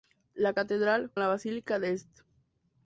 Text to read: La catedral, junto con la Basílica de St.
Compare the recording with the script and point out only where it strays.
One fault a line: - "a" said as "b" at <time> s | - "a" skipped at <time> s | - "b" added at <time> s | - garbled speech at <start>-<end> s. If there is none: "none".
- "junto con" skipped at 1.1 s